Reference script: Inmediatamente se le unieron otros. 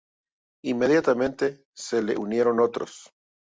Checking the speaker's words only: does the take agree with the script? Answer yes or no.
yes